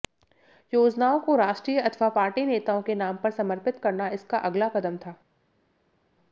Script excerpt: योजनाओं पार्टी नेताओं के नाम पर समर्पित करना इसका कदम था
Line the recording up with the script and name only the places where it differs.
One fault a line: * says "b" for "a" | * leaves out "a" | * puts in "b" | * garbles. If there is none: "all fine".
* puts in "को राष्ट्रीय अथवा"
* puts in "अगला"